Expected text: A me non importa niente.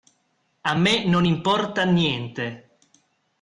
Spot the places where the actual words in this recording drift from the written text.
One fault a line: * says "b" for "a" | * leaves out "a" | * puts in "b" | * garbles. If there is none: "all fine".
all fine